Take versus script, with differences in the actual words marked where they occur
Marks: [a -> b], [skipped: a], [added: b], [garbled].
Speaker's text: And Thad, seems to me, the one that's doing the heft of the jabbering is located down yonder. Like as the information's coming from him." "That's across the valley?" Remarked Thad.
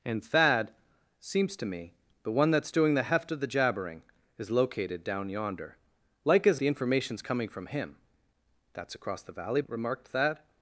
And Thad, seems to me, the one that's doing the heft of the jabbering is located down yonder. Like as the information's coming from him." "That's across the valley?" Remarked Thad.